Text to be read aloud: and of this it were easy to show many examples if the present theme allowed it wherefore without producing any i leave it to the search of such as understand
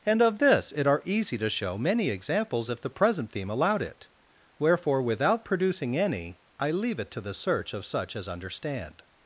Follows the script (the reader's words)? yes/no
no